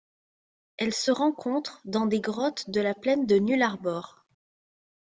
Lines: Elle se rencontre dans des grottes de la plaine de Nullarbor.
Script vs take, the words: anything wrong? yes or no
no